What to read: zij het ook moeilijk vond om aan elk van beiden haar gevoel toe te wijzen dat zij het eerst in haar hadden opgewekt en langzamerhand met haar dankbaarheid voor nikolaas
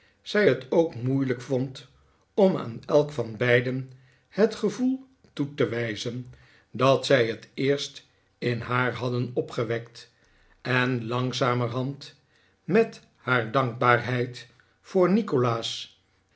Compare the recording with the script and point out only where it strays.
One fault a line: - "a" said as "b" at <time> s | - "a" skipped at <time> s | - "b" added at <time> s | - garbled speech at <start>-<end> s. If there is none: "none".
- "haar" said as "het" at 4.3 s